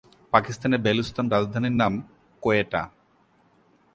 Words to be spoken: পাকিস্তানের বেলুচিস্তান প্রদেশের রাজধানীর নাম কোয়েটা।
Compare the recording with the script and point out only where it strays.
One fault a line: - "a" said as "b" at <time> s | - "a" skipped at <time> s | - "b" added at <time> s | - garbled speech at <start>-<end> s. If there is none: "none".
- "প্রদেশের" skipped at 1.3 s